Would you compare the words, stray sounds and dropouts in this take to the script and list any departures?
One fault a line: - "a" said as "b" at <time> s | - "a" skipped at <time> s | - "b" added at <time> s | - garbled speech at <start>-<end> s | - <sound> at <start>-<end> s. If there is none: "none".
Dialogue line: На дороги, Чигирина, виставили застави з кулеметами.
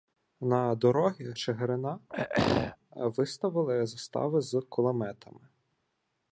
- throat clearing at 2.1-2.8 s